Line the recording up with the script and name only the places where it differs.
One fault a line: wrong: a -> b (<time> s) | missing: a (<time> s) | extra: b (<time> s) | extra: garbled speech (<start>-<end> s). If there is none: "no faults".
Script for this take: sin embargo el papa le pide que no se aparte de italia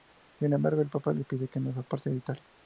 no faults